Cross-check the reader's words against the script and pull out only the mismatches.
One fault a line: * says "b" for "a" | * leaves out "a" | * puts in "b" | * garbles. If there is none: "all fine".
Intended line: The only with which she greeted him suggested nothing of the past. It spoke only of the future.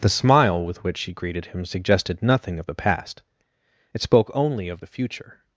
* says "smile" for "only"